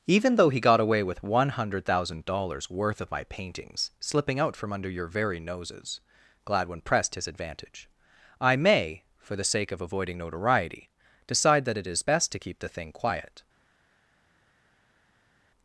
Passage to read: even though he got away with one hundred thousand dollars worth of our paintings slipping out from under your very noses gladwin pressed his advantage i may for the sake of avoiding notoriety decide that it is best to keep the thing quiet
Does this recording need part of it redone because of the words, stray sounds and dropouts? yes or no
yes